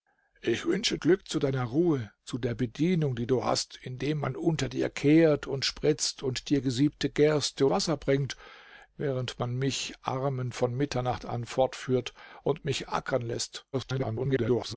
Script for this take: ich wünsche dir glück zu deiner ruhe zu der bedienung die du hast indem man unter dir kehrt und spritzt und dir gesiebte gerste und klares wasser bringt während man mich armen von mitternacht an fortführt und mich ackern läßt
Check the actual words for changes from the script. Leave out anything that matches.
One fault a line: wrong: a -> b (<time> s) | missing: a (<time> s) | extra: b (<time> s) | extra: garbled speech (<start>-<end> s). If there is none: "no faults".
missing: dir (1.0 s)
missing: und klares (7.7 s)
extra: garbled speech (13.7-14.8 s)